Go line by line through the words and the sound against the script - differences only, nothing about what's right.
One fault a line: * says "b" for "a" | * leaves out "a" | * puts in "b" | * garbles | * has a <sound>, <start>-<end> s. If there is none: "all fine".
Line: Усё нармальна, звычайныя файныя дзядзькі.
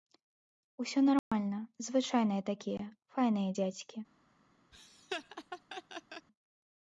* has a dropout, 1.2-1.3 s
* puts in "такія"
* has a laugh, 4.7-6.3 s